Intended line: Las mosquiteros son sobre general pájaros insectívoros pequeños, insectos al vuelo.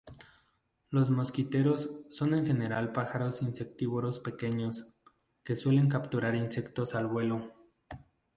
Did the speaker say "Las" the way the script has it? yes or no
no